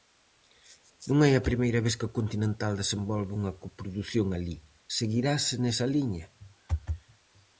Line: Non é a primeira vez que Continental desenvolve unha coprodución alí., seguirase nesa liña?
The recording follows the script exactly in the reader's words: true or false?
true